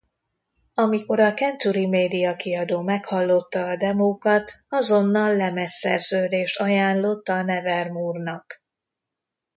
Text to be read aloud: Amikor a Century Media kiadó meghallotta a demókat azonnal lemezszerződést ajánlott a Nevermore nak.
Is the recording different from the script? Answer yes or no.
no